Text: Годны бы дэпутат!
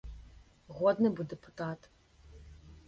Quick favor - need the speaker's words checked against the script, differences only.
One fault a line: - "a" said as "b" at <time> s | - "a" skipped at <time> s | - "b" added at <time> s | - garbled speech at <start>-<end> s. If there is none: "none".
none